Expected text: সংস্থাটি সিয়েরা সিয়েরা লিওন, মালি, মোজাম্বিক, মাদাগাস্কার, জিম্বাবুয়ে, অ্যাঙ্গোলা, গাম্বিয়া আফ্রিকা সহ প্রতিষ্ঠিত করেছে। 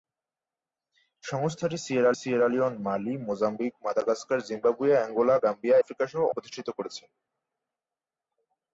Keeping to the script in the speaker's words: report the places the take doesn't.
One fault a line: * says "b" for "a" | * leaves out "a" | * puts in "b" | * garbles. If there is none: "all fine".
all fine